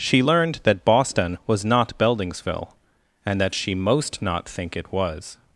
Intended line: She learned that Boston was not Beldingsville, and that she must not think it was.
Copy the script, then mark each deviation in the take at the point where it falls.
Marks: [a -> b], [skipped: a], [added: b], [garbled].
She learned that Boston was not Beldingsville, and that she [must -> most] not think it was.